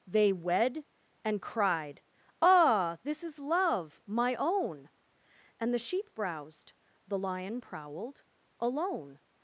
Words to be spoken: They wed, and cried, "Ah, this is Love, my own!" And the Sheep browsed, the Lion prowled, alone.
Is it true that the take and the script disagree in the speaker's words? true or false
false